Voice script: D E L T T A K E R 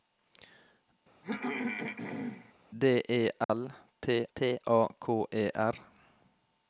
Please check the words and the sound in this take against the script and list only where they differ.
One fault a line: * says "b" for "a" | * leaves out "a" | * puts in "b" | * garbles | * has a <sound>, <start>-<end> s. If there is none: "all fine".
* has a throat clearing, 1.2-2.5 s
* has a dropout, 3.4-3.5 s